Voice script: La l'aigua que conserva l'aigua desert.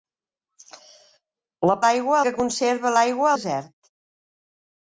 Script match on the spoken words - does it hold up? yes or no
yes